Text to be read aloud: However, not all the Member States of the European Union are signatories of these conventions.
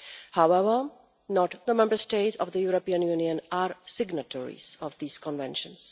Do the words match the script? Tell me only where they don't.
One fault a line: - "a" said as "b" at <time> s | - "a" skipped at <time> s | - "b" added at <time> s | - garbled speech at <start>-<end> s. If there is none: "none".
- "all" skipped at 1.5 s